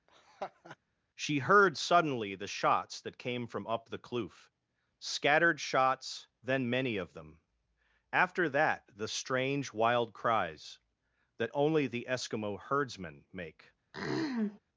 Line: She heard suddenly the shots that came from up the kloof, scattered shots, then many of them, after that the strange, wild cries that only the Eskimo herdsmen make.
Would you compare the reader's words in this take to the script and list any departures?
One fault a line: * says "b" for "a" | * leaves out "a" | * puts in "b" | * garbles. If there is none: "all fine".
all fine